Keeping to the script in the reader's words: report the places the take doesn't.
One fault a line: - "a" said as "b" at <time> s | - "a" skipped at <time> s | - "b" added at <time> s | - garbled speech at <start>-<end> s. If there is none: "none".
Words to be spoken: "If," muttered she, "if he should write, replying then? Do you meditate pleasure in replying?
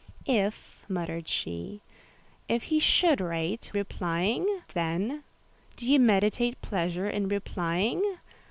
none